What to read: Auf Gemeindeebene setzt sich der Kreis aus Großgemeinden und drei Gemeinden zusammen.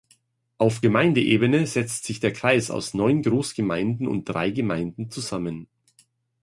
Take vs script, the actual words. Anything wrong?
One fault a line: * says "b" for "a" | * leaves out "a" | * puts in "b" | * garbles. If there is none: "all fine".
* puts in "neun"